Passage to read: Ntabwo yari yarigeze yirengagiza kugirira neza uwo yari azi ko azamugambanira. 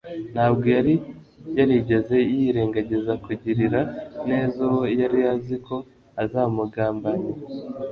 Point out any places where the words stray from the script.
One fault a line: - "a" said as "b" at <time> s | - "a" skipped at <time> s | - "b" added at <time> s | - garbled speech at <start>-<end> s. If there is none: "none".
none